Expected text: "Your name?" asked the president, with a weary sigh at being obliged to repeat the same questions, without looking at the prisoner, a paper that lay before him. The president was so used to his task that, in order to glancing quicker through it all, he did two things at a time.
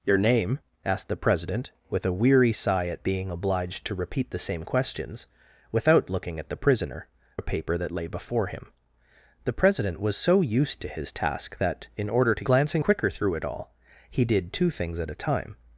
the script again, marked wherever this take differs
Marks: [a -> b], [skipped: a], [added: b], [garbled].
"Your name?" asked the president, with a weary sigh at being obliged to repeat the same questions, without looking at the prisoner, a paper that lay before him. The president was so used to his task that, in order to glancing quicker through it all, he did two things at a time.